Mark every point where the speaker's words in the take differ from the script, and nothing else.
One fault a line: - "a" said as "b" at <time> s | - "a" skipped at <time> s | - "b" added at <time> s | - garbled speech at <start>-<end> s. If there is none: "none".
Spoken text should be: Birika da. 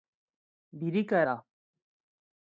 none